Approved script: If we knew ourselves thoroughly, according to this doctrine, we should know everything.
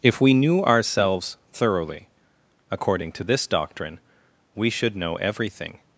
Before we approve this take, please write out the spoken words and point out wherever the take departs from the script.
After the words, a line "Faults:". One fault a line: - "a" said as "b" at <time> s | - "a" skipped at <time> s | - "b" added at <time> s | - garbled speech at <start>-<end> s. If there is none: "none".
If we knew ourselves thoroughly, according to this doctrine, we should know everything.
Faults:
none